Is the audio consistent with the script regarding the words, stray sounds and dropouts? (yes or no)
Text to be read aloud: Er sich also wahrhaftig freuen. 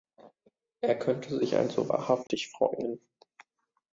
no